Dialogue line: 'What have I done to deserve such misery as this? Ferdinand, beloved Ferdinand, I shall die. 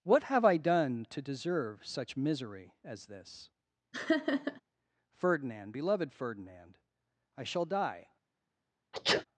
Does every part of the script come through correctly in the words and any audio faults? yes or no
no